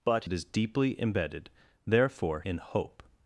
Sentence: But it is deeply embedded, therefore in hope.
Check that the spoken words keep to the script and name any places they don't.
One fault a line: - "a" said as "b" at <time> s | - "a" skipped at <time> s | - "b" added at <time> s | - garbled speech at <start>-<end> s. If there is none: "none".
none